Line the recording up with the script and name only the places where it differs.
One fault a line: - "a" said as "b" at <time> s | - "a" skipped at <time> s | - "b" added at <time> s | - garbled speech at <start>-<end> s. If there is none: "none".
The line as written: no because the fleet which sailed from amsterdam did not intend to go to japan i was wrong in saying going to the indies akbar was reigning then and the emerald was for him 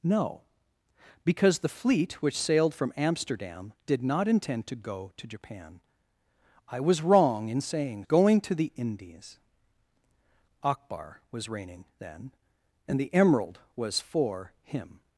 none